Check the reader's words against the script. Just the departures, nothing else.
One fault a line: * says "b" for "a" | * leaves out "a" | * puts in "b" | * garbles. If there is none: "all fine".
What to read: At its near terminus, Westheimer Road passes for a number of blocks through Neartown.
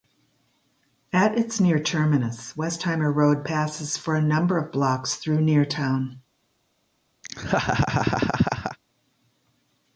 all fine